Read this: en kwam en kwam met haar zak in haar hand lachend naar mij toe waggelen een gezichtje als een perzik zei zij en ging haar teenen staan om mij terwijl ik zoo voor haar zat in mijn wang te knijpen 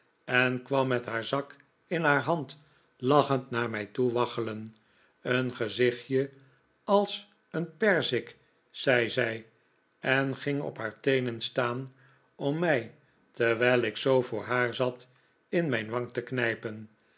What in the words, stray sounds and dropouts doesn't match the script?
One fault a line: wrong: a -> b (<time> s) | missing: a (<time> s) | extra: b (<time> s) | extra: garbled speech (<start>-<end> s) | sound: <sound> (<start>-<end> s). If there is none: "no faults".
missing: en kwam (0.9 s)
extra: op (10.6 s)